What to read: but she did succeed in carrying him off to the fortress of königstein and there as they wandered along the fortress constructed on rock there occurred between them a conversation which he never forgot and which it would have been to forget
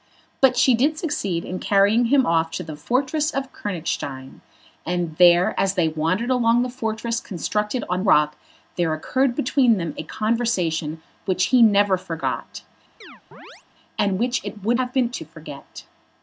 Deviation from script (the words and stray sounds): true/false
true